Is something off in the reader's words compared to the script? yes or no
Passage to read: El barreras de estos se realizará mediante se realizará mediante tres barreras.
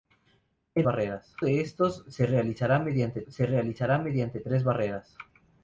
no